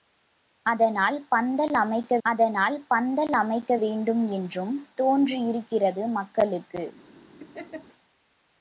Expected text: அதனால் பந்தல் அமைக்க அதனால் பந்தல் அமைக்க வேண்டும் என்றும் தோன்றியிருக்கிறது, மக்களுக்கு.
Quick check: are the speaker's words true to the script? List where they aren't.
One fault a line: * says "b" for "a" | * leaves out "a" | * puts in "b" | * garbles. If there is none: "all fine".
all fine